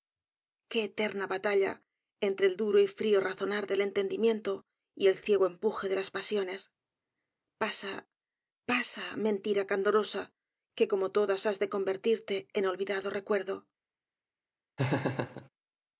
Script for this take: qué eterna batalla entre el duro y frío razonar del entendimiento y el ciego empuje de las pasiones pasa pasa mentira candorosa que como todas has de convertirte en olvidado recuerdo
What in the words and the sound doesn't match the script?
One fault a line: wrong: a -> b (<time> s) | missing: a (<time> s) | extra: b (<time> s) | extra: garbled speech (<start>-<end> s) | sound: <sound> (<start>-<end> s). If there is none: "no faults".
sound: laugh (14.8-15.5 s)